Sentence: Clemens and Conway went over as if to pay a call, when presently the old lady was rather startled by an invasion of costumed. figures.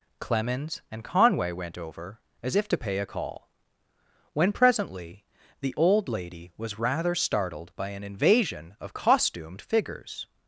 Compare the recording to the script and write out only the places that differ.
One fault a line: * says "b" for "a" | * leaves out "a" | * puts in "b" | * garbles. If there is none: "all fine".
all fine